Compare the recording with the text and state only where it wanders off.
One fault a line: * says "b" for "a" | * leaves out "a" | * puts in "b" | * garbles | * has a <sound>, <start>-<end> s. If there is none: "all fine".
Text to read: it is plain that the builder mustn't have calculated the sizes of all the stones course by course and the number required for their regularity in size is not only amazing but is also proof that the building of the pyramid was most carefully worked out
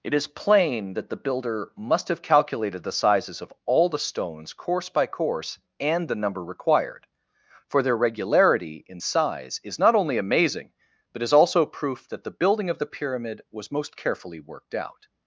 * says "must" for "mustn't"